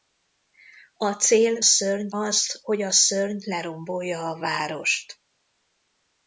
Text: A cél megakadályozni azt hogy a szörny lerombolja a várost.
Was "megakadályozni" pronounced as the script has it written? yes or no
no